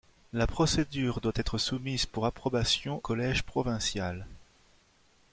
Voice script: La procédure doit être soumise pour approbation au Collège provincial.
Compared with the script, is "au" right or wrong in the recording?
wrong